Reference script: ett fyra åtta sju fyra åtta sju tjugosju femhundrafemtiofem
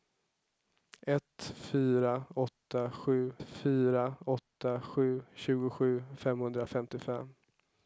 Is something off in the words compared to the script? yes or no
no